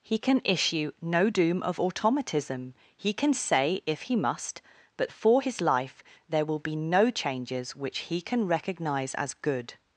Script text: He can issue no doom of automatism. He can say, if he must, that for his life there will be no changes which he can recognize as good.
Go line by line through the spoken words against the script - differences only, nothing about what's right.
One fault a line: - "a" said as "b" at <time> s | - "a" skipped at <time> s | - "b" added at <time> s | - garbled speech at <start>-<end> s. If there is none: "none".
- "that" said as "but" at 5.0 s